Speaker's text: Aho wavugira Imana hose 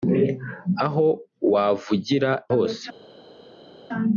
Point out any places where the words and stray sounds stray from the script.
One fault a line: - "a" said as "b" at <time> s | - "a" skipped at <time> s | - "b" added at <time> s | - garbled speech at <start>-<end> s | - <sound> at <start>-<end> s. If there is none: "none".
- "Imana" skipped at 2.3 s